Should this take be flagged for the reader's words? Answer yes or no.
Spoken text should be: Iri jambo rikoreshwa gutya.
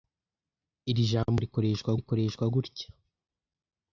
yes